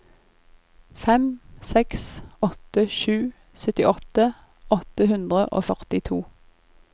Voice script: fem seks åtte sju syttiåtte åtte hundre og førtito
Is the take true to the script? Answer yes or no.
yes